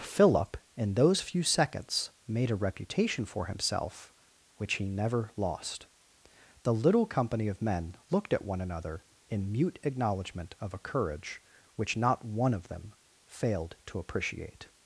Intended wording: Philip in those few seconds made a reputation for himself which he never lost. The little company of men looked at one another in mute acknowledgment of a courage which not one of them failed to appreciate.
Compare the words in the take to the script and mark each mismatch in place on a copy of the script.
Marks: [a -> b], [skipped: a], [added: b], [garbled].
Philip in those few seconds made a reputation for himself which he never lost. The little company of men looked at one another in mute acknowledgment of a courage which not one of them failed to appreciate.